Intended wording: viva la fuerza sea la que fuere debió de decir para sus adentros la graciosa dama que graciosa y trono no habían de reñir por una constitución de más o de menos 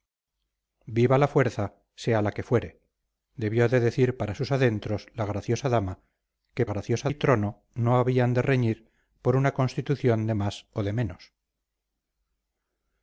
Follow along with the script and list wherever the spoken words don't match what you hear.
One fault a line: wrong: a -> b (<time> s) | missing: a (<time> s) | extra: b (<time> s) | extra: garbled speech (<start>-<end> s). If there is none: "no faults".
no faults